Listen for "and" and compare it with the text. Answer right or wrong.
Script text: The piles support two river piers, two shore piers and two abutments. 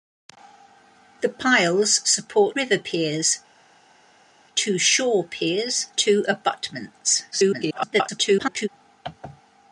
wrong